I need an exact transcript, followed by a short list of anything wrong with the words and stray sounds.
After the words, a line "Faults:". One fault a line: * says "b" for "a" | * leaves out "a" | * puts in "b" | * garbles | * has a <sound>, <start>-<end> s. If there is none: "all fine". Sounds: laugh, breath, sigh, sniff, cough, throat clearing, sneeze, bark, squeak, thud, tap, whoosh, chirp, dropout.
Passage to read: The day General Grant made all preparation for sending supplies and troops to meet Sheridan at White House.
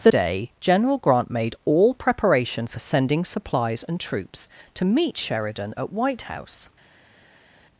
The day General Grant made all preparation for sending supplies and troops to meet Sheridan at White House.
Faults:
all fine